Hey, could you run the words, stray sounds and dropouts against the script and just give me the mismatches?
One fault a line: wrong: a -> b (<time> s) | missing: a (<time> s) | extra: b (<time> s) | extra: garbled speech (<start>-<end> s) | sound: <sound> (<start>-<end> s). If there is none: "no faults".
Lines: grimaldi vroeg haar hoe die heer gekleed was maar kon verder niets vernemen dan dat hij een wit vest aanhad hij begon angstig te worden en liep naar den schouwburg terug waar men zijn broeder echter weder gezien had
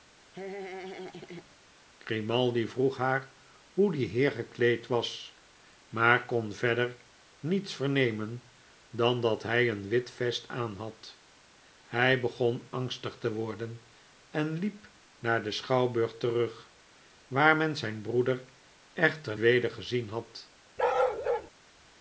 sound: laugh (0.3-1.6 s)
sound: bark (20.8-21.5 s)